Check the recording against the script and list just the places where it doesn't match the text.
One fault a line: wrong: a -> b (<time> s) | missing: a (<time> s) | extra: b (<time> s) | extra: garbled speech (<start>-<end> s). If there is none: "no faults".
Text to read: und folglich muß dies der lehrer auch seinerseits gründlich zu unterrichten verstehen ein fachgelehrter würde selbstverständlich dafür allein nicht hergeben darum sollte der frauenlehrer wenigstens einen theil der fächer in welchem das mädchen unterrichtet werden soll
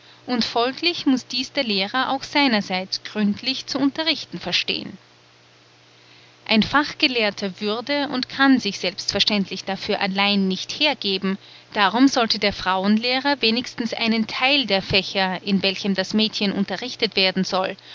extra: und kann sich (8.1 s)